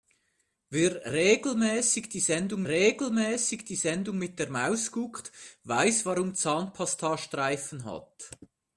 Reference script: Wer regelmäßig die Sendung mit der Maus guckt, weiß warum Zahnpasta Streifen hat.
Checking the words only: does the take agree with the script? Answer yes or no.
no